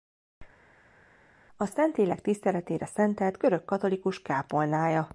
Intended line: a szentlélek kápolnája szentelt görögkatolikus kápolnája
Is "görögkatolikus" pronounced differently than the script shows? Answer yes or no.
no